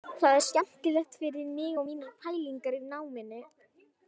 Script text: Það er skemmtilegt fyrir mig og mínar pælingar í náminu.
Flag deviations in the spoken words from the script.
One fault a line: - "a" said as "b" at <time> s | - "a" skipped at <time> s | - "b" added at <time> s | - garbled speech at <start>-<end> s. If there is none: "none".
none